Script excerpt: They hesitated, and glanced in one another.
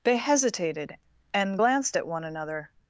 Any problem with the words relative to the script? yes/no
yes